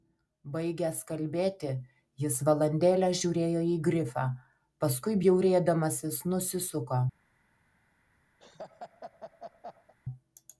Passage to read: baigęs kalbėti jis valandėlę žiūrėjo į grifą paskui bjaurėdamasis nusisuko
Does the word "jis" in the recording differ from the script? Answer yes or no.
no